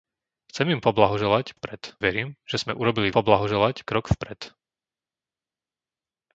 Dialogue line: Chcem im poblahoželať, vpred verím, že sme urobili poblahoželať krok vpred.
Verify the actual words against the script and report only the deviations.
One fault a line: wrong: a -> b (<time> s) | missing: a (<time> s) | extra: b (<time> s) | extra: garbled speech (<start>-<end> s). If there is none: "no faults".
no faults